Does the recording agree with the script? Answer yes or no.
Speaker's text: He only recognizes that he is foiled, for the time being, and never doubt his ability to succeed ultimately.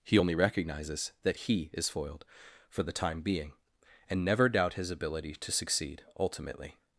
yes